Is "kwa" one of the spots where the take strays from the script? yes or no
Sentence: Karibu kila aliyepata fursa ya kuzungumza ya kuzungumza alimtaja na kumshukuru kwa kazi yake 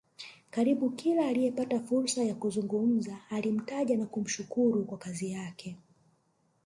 no